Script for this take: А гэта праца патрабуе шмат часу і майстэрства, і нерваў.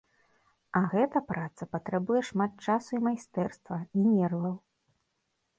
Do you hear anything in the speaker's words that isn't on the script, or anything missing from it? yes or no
no